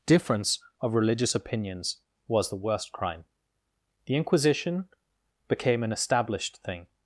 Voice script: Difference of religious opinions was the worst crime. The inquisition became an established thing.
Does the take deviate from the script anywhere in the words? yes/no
no